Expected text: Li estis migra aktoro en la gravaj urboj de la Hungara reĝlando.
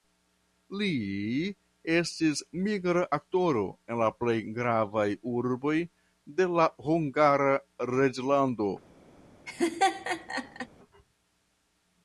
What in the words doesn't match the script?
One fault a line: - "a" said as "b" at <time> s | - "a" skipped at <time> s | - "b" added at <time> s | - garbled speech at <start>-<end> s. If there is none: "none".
- "plej" added at 4.2 s